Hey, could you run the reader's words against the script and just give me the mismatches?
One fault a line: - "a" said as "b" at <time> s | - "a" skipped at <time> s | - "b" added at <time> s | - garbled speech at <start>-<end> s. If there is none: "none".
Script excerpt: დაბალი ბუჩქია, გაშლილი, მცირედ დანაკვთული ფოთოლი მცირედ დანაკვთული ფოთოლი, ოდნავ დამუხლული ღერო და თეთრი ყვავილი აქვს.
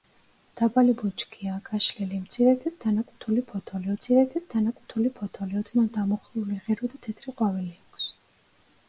none